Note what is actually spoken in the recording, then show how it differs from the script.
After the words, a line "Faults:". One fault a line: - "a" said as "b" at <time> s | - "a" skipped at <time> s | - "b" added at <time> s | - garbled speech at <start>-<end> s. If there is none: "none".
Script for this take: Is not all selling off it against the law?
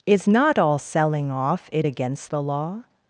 Is not all selling off it against the law?
Faults:
none